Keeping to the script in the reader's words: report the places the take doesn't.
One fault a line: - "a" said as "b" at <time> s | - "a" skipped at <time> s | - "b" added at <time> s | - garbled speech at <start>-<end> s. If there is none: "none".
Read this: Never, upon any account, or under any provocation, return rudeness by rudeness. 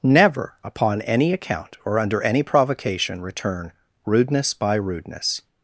none